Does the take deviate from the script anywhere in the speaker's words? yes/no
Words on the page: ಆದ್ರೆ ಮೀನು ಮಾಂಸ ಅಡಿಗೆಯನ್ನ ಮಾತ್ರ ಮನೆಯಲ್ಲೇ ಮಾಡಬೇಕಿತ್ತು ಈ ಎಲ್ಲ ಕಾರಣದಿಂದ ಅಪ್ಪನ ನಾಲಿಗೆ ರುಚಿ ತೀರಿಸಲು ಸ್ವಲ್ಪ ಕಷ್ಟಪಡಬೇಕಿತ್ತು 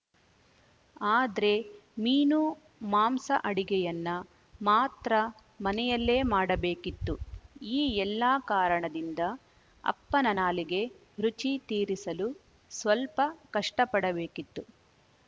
no